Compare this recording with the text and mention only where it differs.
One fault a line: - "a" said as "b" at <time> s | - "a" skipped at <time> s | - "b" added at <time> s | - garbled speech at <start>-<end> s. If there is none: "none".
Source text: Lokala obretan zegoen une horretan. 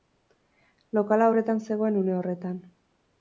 none